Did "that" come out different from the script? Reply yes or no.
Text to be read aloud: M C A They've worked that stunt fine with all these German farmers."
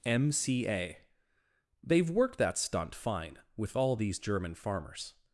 no